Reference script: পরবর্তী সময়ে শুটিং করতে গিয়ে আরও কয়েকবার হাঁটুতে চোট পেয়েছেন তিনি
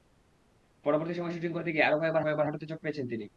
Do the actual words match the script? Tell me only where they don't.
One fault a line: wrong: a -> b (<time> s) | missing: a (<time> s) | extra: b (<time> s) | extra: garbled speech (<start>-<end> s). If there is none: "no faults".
extra: কয়েকবার (2.2 s)